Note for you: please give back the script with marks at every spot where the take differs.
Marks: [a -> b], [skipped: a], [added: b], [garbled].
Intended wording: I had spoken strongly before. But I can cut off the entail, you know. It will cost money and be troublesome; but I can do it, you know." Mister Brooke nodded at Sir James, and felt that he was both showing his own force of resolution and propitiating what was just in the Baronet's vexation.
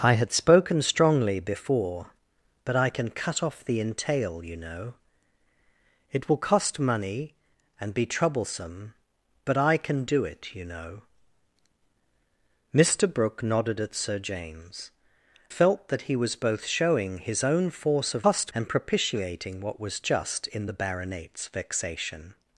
I had spoken strongly before. But I can cut off the entail, you know. It will cost money and be troublesome; but I can do it, you know." Mister Brooke nodded at Sir James, [skipped: and] felt that he was both showing his own force of [resolution -> cost] and propitiating what was just in the Baronet's vexation.